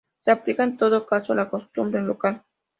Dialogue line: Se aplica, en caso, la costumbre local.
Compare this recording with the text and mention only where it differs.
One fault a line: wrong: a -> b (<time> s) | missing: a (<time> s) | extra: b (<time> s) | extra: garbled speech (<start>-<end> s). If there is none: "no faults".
extra: todo (0.8 s)